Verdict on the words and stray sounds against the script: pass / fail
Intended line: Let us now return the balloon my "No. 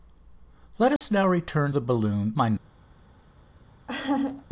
fail